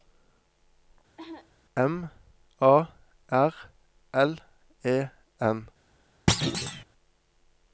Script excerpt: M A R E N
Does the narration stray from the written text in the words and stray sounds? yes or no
yes